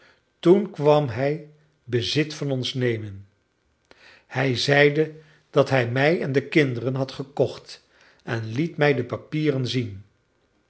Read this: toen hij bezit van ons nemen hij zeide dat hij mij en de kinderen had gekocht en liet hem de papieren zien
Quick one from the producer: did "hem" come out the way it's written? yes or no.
no